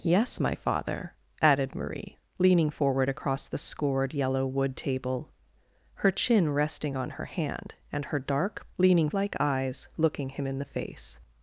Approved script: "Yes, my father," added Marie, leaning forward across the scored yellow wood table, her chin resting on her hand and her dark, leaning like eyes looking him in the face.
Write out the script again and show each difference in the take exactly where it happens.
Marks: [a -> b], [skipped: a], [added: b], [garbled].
"Yes, my father," added Marie, leaning forward across the scored yellow wood table, her chin resting on her hand and her dark, leaning like eyes looking him in the face.